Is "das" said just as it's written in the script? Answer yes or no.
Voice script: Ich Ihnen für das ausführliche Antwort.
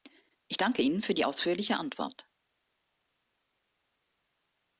no